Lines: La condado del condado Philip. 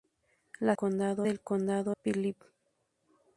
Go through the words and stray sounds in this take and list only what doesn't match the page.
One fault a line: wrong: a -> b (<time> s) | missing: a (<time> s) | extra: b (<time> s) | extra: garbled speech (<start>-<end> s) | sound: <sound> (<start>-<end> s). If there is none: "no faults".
no faults